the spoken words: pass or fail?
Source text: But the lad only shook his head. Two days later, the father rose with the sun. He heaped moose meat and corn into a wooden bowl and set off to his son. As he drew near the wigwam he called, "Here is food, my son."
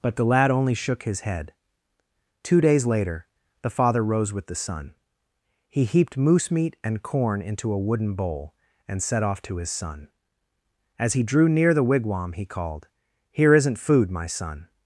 fail